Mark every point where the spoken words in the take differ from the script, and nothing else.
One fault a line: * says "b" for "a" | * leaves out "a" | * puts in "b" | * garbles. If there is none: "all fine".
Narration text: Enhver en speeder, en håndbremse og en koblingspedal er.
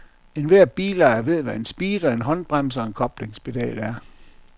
* puts in "bilejer ved hvad"